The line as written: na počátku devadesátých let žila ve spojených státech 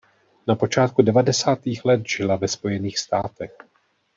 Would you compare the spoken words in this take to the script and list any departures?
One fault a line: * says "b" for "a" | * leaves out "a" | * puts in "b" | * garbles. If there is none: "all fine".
all fine